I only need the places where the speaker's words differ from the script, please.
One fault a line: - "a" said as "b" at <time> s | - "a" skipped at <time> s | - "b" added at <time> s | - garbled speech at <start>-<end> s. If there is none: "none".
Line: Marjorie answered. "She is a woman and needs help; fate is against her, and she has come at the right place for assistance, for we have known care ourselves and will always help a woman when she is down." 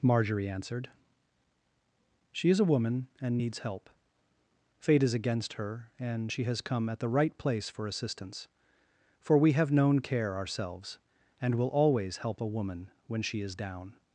none